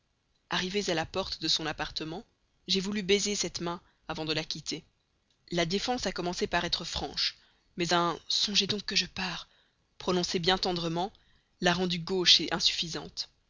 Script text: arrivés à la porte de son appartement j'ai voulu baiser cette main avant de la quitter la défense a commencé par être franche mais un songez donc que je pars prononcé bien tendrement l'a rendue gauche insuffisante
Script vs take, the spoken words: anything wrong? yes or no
no